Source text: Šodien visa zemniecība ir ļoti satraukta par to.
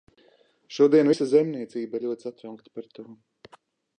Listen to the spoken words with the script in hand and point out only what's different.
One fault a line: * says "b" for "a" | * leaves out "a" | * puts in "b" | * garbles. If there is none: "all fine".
all fine